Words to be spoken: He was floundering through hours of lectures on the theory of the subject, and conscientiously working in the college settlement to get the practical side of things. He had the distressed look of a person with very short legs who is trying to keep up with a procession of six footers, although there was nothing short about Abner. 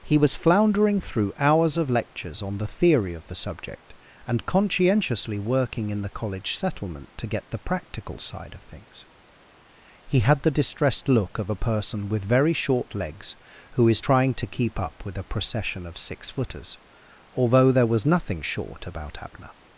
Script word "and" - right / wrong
right